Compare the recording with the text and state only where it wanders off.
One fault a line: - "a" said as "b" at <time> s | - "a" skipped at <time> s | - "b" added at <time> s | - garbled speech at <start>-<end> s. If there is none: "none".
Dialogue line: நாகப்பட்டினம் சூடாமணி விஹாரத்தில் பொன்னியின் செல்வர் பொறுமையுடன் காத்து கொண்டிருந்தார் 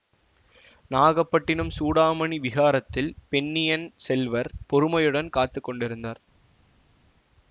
none